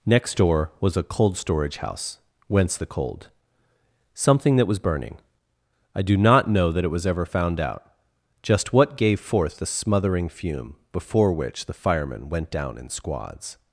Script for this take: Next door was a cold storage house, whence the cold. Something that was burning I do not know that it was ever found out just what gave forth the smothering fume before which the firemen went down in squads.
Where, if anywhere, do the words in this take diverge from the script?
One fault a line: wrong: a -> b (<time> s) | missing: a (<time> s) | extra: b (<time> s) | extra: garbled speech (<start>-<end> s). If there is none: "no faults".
no faults